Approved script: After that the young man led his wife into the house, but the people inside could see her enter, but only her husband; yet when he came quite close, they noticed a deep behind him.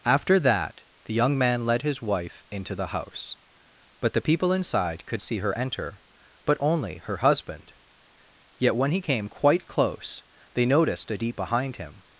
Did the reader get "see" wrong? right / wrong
right